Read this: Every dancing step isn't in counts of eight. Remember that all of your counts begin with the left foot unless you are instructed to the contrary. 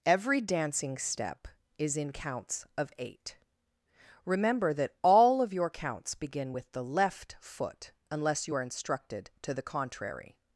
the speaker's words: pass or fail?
fail